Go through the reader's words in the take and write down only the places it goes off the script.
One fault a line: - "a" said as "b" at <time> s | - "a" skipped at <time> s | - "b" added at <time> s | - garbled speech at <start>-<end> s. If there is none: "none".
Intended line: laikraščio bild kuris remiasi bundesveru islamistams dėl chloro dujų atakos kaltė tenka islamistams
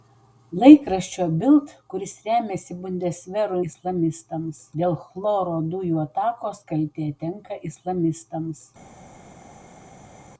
none